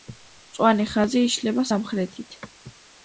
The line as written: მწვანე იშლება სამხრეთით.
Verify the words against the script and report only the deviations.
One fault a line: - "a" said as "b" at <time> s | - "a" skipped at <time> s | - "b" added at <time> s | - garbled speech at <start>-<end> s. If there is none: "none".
- "ხაზი" added at 0.9 s